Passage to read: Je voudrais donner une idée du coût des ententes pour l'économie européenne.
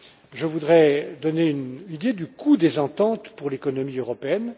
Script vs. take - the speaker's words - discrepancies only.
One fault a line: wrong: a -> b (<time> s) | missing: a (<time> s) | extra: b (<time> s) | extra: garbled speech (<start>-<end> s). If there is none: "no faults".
no faults